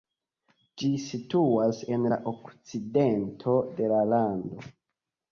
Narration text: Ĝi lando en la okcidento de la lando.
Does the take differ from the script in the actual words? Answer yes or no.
yes